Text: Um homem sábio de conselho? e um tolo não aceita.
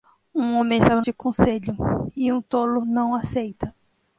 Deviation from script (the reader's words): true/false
false